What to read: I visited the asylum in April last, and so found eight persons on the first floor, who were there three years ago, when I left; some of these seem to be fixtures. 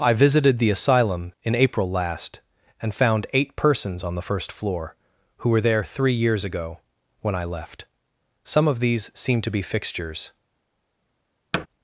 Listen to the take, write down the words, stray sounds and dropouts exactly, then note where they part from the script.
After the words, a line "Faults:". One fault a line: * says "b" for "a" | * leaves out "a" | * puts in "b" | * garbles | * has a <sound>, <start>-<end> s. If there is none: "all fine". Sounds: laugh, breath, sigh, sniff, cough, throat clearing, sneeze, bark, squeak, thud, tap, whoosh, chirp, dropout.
I visited the asylum in April last, and found eight persons on the first floor, who were there three years ago, when I left; some of these seem to be fixtures.
Faults:
* leaves out "so"
* has a thud, 11.5-11.7 s